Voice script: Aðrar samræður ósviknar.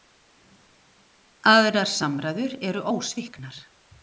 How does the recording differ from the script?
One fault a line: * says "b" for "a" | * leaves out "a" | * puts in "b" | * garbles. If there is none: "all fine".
* puts in "eru"